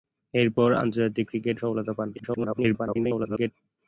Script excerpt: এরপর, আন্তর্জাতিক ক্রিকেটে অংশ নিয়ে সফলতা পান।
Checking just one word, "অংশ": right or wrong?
wrong